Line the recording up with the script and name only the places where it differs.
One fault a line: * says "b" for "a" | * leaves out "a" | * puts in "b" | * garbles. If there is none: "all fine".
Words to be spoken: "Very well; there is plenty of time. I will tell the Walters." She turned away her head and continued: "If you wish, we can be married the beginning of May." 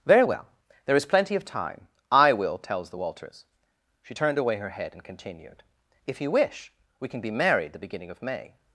* says "tells" for "tell"